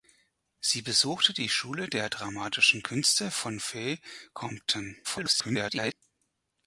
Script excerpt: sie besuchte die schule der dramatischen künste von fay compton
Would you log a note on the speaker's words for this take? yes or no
yes